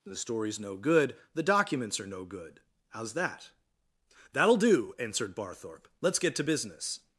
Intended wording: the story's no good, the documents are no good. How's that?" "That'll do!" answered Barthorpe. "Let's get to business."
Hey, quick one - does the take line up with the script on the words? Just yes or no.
yes